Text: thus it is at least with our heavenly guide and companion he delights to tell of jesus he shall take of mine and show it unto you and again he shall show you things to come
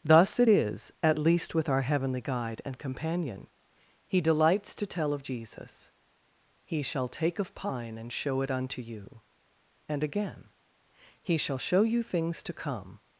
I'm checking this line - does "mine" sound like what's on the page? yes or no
no